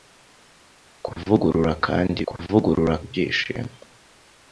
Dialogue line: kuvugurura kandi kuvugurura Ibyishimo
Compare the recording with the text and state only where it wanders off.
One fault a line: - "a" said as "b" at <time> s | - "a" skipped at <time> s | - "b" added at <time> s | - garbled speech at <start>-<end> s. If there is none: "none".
none